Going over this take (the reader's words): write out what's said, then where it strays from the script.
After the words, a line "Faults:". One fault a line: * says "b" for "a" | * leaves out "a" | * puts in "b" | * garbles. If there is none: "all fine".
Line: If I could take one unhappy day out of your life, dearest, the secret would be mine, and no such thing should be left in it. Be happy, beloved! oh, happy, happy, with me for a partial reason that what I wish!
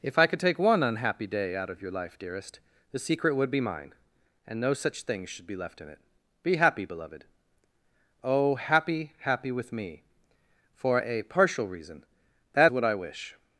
If I could take one unhappy day out of your life, dearest, the secret would be mine, and no such thing should be left in it. Be happy, beloved! oh, happy, happy, with me for a partial reason that what I wish!
Faults:
all fine